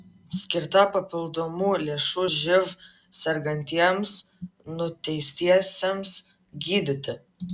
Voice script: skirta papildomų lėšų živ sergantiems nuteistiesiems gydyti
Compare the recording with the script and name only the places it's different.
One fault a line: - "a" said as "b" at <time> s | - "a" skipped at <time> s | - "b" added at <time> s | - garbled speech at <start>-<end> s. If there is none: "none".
none